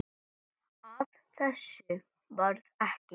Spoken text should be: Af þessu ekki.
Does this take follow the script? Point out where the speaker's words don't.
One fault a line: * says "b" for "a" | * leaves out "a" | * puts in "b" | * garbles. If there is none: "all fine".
* puts in "varð"